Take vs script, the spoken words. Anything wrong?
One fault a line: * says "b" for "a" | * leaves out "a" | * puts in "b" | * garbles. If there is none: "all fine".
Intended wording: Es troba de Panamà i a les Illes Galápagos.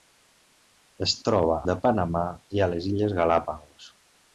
all fine